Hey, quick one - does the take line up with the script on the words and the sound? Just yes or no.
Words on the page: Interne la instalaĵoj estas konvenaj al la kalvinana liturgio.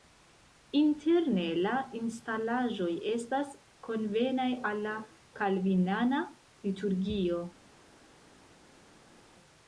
yes